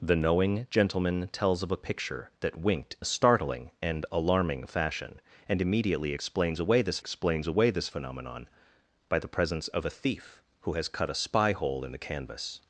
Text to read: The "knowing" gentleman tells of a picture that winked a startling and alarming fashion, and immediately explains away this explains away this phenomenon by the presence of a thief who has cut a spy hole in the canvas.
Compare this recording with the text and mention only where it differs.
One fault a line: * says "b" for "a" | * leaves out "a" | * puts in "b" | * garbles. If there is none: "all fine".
all fine